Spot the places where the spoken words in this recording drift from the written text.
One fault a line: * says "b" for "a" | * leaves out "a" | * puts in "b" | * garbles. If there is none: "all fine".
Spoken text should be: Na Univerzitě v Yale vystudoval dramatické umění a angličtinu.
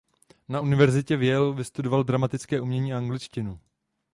all fine